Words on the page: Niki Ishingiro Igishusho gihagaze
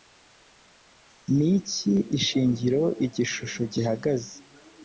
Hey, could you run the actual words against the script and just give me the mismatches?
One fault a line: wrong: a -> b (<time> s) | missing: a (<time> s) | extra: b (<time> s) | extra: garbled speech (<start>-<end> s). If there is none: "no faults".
no faults